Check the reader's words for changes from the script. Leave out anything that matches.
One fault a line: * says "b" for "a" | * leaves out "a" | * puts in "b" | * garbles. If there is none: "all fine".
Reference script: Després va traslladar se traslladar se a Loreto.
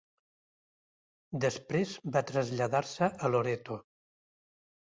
* leaves out "traslladar se"